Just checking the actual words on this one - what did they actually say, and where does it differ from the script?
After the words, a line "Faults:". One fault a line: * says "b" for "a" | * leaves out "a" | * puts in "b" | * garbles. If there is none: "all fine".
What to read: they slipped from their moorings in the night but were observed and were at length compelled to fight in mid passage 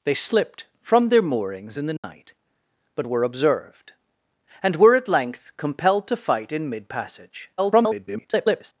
they slipped from their moorings in the night but were observed and were at length compelled to fight in mid passage [garbled]
Faults:
* garbles